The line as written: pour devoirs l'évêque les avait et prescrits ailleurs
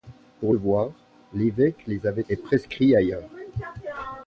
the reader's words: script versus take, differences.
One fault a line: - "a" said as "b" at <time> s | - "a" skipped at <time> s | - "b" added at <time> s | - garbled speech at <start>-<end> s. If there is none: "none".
none